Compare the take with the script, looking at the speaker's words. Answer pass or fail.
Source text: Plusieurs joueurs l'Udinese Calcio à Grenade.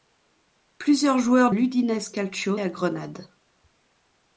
pass